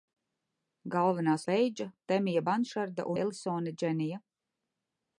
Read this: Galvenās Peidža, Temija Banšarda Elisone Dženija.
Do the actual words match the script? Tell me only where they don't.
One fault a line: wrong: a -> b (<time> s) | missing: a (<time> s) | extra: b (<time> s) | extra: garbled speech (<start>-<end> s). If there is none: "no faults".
no faults